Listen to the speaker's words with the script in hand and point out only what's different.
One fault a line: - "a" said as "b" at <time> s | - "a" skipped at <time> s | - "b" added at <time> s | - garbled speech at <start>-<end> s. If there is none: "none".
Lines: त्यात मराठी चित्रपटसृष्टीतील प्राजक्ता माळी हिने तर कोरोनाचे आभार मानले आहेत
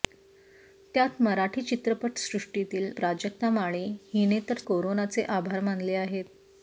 none